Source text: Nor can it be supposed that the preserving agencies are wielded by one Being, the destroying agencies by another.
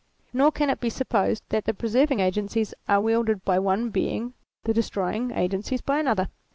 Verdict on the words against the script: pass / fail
pass